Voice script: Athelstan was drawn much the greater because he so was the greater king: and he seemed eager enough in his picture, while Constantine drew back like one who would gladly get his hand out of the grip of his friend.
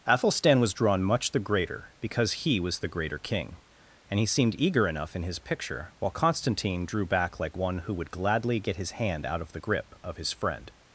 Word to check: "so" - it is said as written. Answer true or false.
false